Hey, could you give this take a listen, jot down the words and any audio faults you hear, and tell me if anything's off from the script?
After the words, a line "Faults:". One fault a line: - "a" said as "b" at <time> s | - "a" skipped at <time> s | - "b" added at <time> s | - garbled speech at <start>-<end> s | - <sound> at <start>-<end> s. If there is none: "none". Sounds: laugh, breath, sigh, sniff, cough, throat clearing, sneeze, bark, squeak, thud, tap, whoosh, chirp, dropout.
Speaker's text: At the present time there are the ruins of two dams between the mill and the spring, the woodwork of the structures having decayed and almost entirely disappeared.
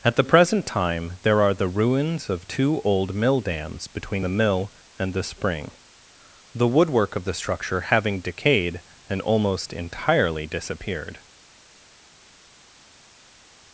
At the present time there are the ruins of two old mill dams between the mill and the spring, the woodwork of the structure having decayed and almost entirely disappeared.
Faults:
- "old mill" added at 2.8 s
- "structures" said as "structure" at 7.3 s